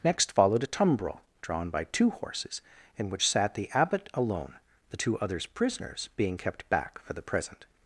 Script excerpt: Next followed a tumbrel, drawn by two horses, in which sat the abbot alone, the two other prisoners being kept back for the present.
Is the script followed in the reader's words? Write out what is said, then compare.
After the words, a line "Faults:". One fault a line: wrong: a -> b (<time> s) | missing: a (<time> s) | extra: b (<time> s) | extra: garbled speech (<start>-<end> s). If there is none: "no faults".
Next followed a tumbrel, drawn by two horses, in which sat the abbot alone, the two others prisoners being kept back for the present.
Faults:
wrong: other -> others (5.2 s)